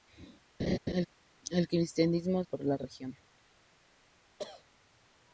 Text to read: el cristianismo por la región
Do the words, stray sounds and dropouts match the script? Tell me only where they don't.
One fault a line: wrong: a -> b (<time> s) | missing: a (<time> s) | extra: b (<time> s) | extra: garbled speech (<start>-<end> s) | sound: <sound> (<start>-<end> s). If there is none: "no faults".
sound: laugh (0.6-1.1 s)
sound: cough (4.4-4.6 s)